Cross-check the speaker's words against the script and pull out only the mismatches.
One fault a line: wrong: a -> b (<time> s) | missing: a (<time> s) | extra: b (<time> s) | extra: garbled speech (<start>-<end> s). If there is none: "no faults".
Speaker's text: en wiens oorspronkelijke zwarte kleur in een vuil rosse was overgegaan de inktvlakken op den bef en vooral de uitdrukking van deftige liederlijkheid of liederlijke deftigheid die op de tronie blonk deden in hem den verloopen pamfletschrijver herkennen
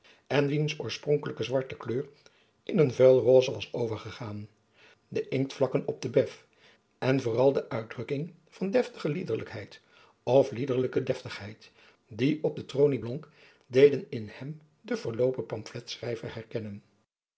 no faults